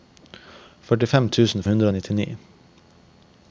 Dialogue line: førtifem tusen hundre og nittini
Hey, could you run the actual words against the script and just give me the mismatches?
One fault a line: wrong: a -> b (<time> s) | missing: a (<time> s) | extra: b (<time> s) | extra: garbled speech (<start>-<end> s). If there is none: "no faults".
no faults